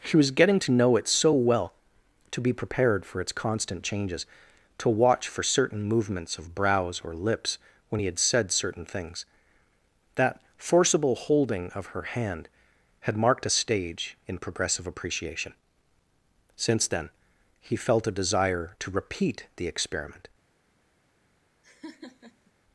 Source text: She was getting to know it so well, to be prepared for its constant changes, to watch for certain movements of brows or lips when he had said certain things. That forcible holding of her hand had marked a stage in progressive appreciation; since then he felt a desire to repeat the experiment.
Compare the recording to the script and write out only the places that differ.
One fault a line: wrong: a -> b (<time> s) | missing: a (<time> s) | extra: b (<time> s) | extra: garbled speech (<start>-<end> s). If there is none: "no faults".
no faults